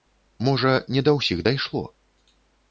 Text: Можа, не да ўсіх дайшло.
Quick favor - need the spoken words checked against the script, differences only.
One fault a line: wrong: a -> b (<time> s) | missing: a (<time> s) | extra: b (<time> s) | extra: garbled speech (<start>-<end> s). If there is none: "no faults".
no faults